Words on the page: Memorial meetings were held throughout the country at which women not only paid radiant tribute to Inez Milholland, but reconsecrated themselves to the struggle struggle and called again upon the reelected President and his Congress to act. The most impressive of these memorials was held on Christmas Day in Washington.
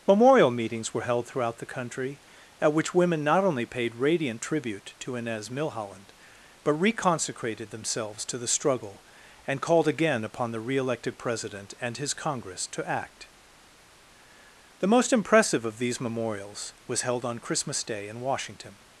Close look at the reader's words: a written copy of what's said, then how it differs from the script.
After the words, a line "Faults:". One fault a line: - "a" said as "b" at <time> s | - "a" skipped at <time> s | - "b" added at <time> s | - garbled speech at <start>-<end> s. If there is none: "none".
Memorial meetings were held throughout the country at which women not only paid radiant tribute to Inez Milholland, but reconsecrated themselves to the struggle and called again upon the reelected President and his Congress to act. The most impressive of these memorials was held on Christmas Day in Washington.
Faults:
- "struggle" skipped at 9.1 s